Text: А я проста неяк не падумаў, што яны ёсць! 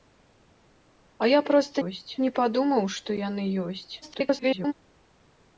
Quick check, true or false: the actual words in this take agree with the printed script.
false